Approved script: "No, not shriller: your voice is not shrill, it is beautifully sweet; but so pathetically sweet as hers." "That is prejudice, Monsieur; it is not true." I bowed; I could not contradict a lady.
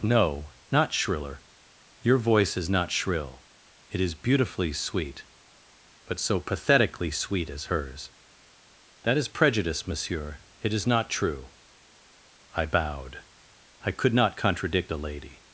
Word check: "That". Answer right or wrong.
right